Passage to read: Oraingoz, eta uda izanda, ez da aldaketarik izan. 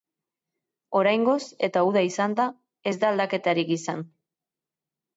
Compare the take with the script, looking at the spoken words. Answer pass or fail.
pass